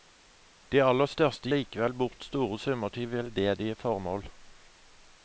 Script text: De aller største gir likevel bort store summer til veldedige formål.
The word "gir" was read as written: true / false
false